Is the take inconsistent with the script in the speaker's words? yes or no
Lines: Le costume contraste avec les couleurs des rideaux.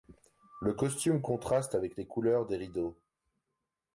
no